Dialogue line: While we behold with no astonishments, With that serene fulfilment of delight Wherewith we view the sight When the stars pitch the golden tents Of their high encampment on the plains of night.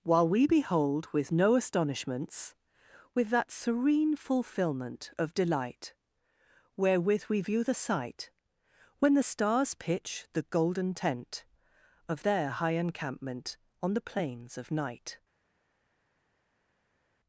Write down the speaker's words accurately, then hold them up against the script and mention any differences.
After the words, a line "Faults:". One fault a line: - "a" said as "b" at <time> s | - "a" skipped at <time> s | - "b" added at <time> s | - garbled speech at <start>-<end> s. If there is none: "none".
While we behold with no astonishments, With that serene fulfilment of delight Wherewith we view the sight When the stars pitch the golden tent Of their high encampment on the plains of night.
Faults:
- "tents" said as "tent" at 10.9 s